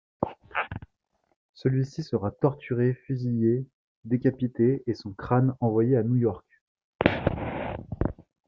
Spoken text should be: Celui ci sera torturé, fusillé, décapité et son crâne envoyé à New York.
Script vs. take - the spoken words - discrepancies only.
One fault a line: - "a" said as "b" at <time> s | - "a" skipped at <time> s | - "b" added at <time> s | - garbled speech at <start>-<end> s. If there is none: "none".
none